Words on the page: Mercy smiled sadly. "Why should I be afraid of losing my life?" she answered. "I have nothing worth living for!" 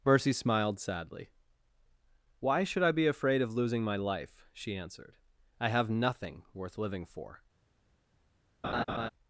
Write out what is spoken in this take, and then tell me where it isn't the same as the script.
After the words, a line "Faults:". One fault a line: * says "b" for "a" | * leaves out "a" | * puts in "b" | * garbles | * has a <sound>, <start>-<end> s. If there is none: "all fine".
Mercy smiled sadly. "Why should I be afraid of losing my life?" she answered. "I have nothing worth living for!"
Faults:
* has a laugh, 8.6-9.1 s